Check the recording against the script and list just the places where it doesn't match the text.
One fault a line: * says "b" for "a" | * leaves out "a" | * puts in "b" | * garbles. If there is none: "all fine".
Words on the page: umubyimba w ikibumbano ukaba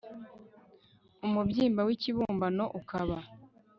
all fine